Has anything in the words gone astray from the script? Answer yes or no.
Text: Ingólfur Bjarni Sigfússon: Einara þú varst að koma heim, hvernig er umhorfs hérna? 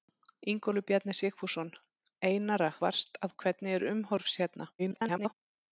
yes